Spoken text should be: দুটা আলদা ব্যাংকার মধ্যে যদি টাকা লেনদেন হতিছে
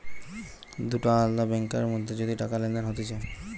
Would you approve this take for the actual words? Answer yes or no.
yes